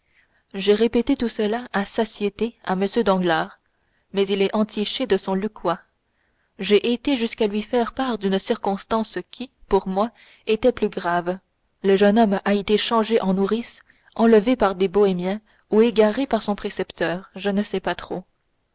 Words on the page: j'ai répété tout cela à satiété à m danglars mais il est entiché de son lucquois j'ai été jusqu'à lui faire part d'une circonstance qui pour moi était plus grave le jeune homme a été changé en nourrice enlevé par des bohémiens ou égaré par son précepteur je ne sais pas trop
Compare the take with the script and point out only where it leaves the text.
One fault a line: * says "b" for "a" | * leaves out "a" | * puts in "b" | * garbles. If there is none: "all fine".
all fine